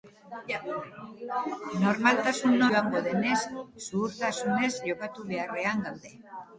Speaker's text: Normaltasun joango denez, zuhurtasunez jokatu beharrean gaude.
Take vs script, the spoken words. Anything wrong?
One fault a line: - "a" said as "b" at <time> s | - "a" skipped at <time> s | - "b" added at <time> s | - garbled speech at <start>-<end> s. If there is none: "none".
none